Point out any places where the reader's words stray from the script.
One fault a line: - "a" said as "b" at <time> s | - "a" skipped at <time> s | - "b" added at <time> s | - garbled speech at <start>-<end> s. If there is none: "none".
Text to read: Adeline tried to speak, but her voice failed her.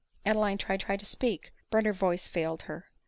- "tried" added at 0.8 s